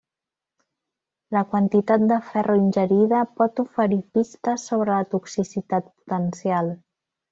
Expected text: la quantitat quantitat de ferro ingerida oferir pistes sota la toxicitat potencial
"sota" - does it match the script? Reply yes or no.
no